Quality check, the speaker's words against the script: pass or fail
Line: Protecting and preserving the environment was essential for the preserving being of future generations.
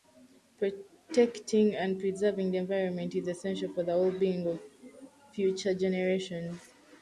fail